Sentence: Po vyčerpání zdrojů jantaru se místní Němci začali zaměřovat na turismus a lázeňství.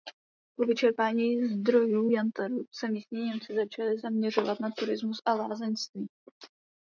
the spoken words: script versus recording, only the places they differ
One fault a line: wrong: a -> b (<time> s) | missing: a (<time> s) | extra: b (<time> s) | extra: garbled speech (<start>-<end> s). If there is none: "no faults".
no faults